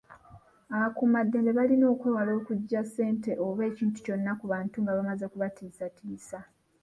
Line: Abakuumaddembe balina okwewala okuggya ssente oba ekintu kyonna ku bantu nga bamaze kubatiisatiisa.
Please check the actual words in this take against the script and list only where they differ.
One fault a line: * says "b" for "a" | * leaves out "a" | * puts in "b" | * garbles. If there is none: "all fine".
all fine